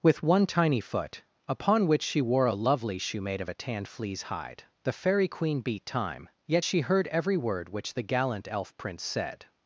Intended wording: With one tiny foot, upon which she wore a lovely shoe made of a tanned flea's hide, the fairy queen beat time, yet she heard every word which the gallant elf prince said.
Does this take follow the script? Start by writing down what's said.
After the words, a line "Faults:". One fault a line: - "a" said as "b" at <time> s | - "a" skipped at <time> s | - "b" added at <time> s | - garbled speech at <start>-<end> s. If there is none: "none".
With one tiny foot, upon which she wore a lovely shoe made of a tanned flea's hide, the fairy queen beat time, yet she heard every word which the gallant elf prince said.
Faults:
none